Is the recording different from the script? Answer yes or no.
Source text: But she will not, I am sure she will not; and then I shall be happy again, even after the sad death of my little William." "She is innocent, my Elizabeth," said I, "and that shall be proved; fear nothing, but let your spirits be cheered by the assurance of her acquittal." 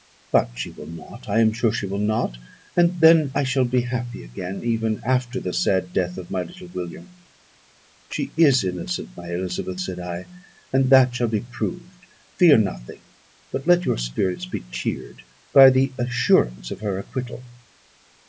no